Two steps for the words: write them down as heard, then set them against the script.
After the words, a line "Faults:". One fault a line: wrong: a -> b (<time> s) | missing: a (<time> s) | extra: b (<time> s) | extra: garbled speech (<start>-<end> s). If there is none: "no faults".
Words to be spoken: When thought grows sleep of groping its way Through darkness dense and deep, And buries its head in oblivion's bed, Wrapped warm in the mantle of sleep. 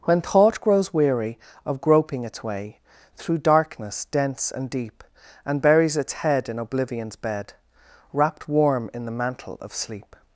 When thought grows weary of groping its way Through darkness dense and deep, And buries its head in oblivion's bed, Wrapped warm in the mantle of sleep.
Faults:
wrong: sleep -> weary (0.9 s)